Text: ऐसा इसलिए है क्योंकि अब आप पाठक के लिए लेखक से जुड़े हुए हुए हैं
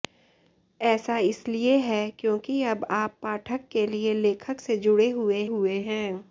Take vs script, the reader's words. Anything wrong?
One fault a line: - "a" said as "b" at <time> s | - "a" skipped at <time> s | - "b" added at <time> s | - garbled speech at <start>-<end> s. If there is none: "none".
none